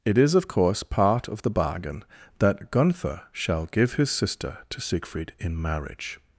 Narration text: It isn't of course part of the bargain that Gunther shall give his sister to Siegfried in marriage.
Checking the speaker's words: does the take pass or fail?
fail